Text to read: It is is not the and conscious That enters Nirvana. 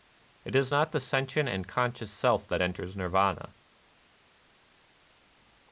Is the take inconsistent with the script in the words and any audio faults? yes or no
yes